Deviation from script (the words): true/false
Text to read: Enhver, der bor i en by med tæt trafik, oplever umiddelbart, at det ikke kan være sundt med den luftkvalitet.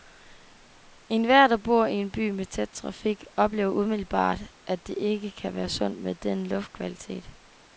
false